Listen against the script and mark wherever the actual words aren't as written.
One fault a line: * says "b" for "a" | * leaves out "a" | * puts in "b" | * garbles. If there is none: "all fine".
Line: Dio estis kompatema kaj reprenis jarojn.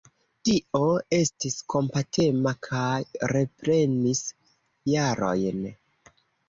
all fine